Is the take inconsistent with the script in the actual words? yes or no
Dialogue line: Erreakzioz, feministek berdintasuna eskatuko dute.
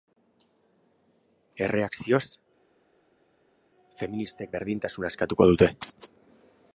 no